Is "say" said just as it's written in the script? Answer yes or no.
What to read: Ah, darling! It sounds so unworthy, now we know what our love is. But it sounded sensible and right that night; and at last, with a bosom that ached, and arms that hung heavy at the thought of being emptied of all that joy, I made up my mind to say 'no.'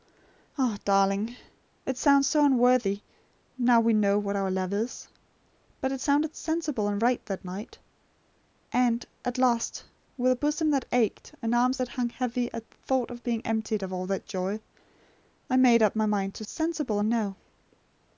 no